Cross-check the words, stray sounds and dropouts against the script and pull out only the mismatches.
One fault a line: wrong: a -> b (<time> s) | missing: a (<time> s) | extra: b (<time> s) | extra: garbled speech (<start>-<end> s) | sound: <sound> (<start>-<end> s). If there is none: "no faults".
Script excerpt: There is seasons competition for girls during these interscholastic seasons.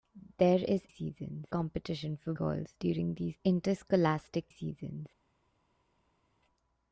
no faults